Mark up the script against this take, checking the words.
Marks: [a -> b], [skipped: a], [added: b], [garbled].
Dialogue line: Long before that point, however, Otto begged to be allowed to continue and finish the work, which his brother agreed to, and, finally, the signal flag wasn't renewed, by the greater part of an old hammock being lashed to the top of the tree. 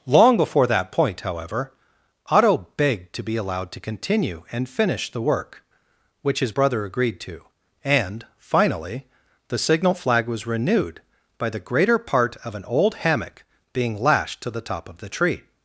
Long before that point, however, Otto begged to be allowed to continue and finish the work, which his brother agreed to, and, finally, the signal flag [wasn't -> was] renewed, by the greater part of an old hammock being lashed to the top of the tree.